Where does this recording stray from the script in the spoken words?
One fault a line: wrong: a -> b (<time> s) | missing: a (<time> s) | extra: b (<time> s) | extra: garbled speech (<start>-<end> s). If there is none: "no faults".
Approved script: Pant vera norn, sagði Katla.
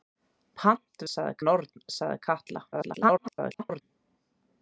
wrong: vera -> sagði (1.1 s)
extra: garbled speech (2.7-3.8 s)